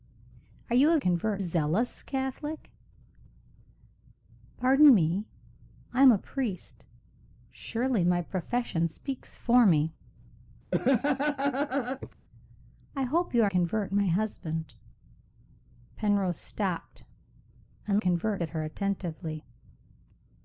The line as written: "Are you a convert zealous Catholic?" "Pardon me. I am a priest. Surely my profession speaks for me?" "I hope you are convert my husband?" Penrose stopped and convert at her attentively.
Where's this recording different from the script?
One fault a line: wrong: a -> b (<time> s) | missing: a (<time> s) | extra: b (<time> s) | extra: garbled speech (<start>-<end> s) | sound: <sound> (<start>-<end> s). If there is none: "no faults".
sound: laugh (10.7-12.1 s)